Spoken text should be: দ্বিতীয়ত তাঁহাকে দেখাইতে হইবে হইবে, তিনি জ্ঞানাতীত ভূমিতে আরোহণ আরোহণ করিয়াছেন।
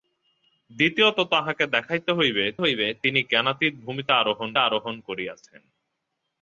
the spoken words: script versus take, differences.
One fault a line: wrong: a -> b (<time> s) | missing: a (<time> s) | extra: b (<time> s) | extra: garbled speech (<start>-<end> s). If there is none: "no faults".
no faults